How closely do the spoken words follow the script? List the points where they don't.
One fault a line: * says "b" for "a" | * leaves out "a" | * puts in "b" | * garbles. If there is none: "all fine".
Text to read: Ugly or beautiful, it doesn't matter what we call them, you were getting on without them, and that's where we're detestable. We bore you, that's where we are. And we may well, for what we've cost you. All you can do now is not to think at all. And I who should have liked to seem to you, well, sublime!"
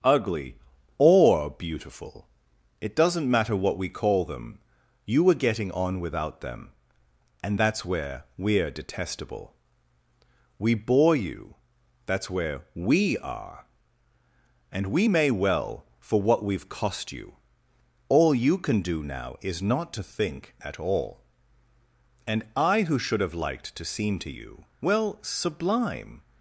all fine